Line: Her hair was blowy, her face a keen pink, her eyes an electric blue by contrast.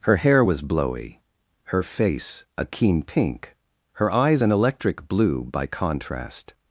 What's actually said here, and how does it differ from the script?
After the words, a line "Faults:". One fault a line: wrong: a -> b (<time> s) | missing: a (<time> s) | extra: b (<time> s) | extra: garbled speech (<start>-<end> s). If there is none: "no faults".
Her hair was blowy, her face a keen pink, her eyes an electric blue by contrast.
Faults:
no faults